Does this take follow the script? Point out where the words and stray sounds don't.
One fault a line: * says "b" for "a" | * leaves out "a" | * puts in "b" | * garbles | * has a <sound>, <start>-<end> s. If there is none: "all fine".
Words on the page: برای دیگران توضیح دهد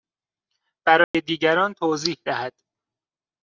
* has a dropout, 1.0-1.1 s